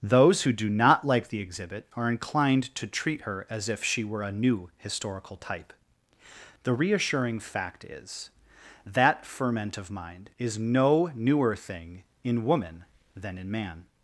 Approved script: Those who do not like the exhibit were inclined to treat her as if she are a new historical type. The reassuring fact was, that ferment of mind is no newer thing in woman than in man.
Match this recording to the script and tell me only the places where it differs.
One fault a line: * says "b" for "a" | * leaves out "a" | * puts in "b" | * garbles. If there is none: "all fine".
* says "are" for "were"
* says "were" for "are"
* says "is" for "was"